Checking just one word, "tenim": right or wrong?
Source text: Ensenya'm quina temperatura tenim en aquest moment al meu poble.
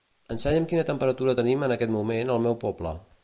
right